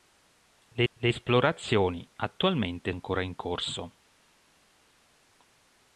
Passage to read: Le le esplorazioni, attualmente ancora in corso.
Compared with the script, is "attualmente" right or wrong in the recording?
right